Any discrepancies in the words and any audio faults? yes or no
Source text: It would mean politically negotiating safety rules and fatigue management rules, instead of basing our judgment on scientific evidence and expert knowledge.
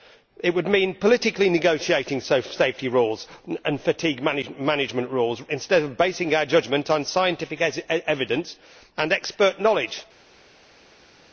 no